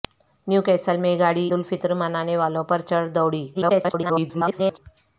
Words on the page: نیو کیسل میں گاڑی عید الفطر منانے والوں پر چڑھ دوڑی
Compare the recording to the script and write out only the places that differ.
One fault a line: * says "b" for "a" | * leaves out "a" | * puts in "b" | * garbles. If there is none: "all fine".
* leaves out "عید"
* garbles